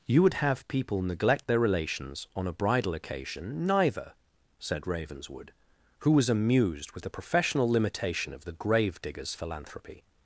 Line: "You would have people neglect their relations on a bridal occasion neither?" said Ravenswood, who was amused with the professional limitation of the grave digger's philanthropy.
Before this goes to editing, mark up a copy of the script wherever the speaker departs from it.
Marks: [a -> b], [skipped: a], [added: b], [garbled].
"You would have people neglect their relations on a bridal occasion neither?" said Ravenswood, who was amused with the professional limitation of the grave digger's philanthropy.